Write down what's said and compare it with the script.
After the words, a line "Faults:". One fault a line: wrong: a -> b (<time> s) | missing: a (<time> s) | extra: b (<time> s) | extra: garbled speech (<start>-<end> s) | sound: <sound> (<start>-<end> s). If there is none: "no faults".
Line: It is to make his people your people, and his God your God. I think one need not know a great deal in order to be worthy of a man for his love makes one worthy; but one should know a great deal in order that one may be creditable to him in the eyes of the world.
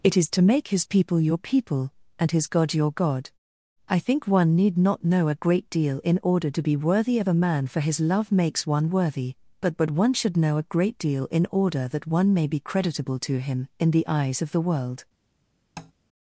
It is to make his people your people, and his God your God. I think one need not know a great deal in order to be worthy of a man for his love makes one worthy; but but one should know a great deal in order that one may be creditable to him in the eyes of the world.
Faults:
extra: but (9.8 s)
sound: tap (15.8-15.9 s)